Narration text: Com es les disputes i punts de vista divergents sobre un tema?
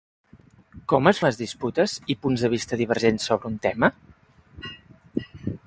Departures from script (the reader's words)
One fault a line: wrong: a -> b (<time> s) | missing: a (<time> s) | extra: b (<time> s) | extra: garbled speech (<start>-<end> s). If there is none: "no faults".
no faults